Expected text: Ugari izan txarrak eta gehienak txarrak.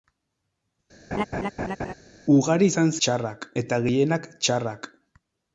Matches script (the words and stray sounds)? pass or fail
fail